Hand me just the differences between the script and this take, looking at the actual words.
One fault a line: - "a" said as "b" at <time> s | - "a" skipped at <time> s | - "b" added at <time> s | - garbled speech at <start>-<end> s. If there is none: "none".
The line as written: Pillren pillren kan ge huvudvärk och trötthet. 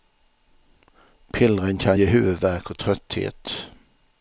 - "pillren" skipped at 1.8 s